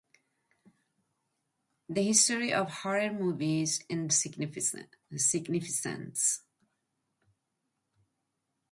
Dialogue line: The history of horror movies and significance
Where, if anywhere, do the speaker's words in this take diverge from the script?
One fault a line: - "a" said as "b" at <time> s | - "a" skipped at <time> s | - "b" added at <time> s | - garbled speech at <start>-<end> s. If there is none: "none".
none